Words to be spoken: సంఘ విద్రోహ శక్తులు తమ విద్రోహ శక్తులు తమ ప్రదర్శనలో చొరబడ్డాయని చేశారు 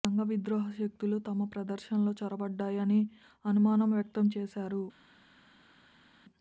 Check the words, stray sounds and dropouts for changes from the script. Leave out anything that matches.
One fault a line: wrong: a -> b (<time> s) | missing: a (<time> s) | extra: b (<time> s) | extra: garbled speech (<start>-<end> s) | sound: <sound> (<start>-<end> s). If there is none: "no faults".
wrong: విద్రోహ శక్తులు తమ ప్రదర్శనలో చొరబడ్డాయని -> ప్రదర్శనలో చొరబడ్డాయని అనుమానం వ్యక్తం (1.5 s)